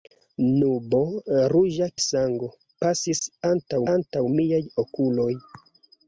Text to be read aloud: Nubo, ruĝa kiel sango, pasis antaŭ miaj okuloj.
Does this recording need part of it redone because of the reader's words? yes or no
yes